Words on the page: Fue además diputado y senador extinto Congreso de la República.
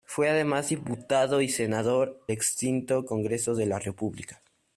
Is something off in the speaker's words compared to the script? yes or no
no